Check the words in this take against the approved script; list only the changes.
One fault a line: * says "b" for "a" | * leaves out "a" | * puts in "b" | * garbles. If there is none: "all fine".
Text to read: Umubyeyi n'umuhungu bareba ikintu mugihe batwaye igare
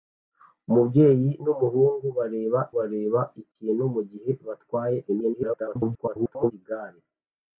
* puts in "bareba"
* garbles